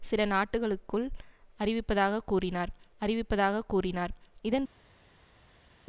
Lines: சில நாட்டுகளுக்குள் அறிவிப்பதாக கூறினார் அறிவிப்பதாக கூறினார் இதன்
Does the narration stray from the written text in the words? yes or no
no